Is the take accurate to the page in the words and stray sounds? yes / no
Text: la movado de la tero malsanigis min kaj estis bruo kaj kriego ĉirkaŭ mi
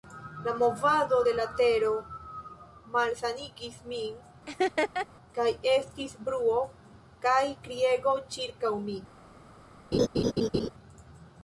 no